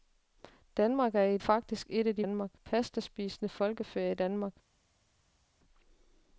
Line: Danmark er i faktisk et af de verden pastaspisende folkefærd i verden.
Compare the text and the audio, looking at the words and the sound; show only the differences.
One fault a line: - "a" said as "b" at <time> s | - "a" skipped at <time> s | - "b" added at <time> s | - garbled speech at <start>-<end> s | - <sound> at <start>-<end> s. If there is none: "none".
none